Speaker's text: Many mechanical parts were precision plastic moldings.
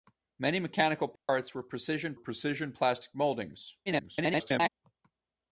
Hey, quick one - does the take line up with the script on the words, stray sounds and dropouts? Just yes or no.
no